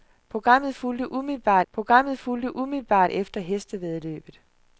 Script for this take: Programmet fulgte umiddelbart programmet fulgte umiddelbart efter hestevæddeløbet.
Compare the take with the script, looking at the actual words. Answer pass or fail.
pass